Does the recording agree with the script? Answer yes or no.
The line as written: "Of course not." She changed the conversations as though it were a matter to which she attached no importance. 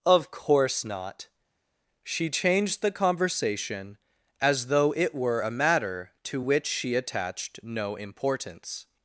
no